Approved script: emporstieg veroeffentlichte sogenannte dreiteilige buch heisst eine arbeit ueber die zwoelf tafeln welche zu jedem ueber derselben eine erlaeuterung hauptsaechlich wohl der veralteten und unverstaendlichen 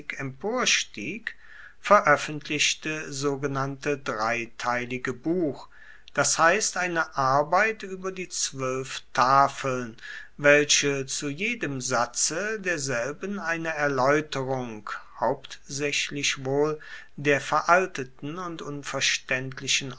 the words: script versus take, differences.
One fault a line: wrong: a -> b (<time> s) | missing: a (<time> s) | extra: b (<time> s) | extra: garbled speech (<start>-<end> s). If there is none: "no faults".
extra: das (6.1 s)
wrong: ueber -> satze (11.8 s)